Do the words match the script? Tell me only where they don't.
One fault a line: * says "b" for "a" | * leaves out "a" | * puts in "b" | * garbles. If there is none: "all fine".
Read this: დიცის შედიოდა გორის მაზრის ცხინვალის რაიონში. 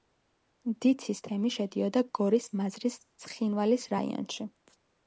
* puts in "თემი"